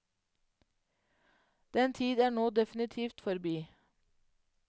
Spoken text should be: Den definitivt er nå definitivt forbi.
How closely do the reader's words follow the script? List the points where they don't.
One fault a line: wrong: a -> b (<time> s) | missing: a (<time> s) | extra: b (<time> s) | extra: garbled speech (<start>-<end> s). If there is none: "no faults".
wrong: definitivt -> tid (1.9 s)